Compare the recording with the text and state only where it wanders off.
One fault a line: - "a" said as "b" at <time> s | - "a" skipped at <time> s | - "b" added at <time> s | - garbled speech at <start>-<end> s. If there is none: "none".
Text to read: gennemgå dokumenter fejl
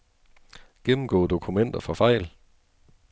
- "for" added at 1.8 s